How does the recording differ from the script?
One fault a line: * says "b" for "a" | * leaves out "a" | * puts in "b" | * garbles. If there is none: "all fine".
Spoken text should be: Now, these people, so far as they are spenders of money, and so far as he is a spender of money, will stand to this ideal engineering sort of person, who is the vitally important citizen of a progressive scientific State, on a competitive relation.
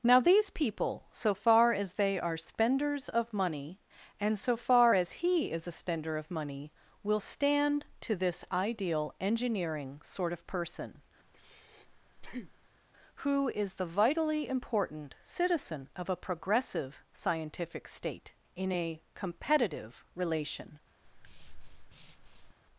* says "in" for "on"